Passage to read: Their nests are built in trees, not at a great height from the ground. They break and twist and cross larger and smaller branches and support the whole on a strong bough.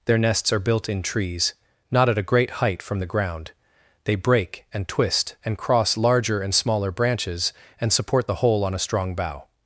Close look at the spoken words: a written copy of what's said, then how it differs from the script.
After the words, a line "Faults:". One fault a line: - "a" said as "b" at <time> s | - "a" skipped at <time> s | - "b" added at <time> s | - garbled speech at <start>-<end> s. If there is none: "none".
Their nests are built in trees, not at a great height from the ground. They break and twist and cross larger and smaller branches and support the whole on a strong bough.
Faults:
none